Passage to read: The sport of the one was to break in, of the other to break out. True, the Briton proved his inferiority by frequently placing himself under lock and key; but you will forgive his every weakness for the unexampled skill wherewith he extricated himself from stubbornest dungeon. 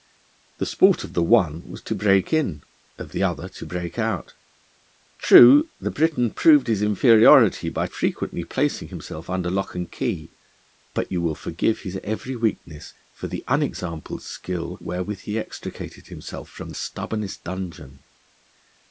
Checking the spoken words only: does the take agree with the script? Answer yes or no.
yes